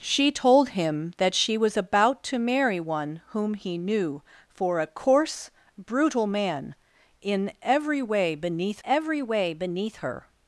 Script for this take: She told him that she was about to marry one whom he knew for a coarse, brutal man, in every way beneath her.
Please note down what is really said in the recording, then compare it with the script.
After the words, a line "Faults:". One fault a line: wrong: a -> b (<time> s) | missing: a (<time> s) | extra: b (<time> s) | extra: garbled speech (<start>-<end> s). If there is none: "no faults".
She told him that she was about to marry one whom he knew for a coarse, brutal man, in every way beneath every way beneath her.
Faults:
extra: every way beneath (8.8 s)